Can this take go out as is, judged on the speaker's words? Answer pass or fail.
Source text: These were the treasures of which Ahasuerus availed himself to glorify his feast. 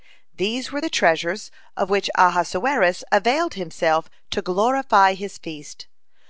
pass